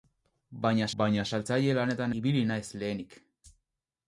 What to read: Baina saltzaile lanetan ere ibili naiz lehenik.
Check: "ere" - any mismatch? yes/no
yes